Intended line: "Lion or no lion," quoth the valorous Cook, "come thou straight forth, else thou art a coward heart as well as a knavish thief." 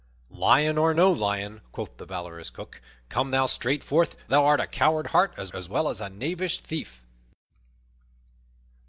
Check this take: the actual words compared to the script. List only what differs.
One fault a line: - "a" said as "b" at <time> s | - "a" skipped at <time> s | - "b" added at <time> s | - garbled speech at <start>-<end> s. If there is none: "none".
- "else" skipped at 4.2 s
- "as" added at 5.5 s